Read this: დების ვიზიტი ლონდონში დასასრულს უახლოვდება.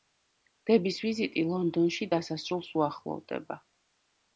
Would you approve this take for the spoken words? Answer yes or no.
yes